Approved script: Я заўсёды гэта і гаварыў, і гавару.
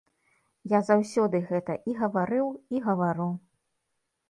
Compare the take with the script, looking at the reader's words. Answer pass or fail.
pass